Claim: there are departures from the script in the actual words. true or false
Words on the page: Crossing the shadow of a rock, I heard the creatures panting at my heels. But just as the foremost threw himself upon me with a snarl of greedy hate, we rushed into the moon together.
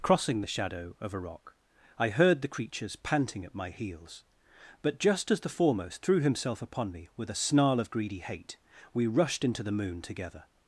false